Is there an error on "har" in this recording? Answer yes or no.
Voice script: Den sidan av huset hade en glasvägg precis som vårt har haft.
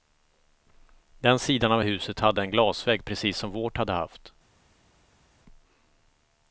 yes